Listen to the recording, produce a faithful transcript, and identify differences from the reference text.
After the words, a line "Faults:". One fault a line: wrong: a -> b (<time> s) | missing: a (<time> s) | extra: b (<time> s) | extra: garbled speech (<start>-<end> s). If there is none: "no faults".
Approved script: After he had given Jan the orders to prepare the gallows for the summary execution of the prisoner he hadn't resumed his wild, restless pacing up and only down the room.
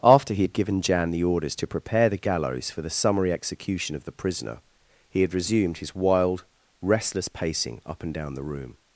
After he had given Jan the orders to prepare the gallows for the summary execution of the prisoner he had resumed his wild, restless pacing up and down the room.
Faults:
wrong: hadn't -> had (5.2 s)
missing: only (8.1 s)